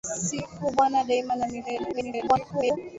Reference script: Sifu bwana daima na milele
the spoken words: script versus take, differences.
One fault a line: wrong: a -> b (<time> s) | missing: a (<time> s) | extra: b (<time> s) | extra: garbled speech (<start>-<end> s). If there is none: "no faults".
extra: garbled speech (1.9-2.8 s)